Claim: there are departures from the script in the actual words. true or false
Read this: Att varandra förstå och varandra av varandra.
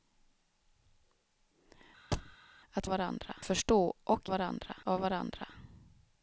false